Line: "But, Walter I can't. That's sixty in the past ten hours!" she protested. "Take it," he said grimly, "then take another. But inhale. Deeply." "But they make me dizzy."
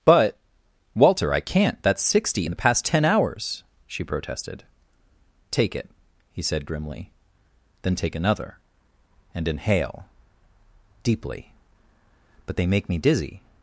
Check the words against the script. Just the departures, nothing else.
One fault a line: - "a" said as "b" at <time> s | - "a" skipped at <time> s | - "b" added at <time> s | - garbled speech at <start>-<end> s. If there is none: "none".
- "But" said as "And" at 9.3 s